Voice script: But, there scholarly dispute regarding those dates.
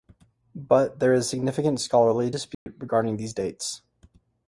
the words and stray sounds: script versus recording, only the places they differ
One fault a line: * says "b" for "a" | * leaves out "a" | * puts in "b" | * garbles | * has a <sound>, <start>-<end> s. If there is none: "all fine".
* puts in "is significant"
* has a dropout, 2.5-2.7 s
* says "these" for "those"